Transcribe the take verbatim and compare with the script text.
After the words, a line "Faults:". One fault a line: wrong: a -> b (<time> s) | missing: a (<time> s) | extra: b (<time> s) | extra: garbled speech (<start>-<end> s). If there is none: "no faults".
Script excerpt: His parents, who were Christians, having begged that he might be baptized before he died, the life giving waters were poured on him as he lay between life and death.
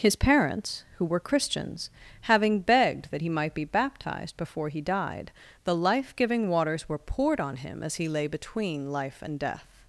His parents, who were Christians, having begged that he might be baptized before he died, the life giving waters were poured on him as he lay between life and death.
Faults:
no faults